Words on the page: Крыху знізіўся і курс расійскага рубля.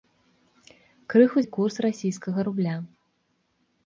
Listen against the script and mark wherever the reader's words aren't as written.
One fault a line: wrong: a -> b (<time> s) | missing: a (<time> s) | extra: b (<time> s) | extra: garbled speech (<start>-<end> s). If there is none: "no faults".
missing: знізіўся (1.4 s)